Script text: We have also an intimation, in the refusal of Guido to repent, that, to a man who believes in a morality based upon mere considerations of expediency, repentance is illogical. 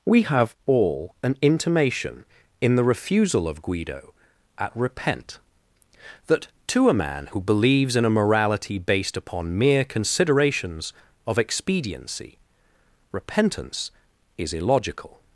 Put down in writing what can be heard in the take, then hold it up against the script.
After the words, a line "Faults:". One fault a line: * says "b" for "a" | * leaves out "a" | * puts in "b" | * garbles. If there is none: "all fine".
We have all an intimation, in the refusal of Guido at repent, that, to a man who believes in a morality based upon mere considerations of expediency, repentance is illogical.
Faults:
* says "all" for "also"
* says "at" for "to"